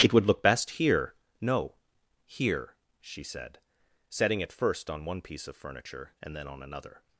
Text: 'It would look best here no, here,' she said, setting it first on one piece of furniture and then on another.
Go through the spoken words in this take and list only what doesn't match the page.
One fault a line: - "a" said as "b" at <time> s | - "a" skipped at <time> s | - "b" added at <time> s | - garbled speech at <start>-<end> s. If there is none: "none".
none